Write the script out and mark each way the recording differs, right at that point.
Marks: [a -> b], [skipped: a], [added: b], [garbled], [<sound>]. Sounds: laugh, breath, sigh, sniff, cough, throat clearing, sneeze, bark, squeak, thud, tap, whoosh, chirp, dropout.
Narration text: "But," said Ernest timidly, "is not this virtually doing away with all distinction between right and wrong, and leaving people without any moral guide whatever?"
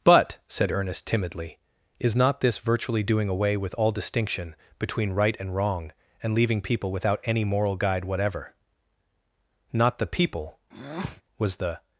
"But," said Ernest timidly, "is not this virtually doing away with all distinction between right and wrong, and leaving people without any moral guide whatever?" [added: Not the people was the] [breath]